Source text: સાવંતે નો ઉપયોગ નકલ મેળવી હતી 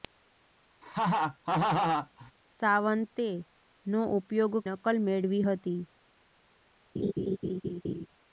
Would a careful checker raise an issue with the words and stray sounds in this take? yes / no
yes